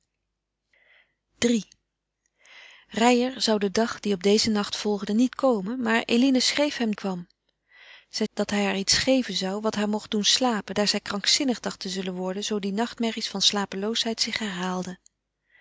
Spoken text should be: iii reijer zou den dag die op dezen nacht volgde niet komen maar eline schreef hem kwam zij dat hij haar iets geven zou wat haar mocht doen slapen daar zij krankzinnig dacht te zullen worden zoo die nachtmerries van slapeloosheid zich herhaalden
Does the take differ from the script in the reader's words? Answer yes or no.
no